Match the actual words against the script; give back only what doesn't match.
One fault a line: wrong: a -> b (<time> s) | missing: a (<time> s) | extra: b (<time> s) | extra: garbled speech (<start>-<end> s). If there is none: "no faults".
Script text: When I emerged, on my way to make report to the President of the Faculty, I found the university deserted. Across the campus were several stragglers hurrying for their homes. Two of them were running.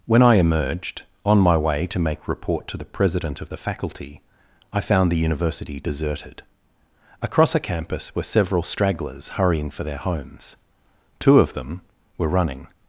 wrong: the -> a (7.5 s)